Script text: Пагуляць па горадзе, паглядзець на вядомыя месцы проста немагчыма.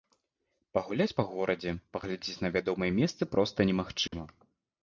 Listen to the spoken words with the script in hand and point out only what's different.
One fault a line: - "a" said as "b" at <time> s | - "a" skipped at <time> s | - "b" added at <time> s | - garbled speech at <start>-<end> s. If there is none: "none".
none